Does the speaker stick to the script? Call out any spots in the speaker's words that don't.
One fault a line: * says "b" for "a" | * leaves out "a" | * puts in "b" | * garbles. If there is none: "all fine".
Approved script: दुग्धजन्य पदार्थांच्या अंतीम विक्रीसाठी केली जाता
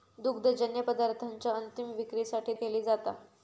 all fine